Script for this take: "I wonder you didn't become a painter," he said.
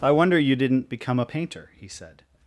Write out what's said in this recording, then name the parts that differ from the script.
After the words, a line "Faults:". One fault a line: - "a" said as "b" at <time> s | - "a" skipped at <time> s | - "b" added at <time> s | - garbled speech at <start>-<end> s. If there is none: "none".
"I wonder you didn't become a painter," he said.
Faults:
none